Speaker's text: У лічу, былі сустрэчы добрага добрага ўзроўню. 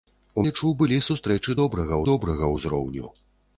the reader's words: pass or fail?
pass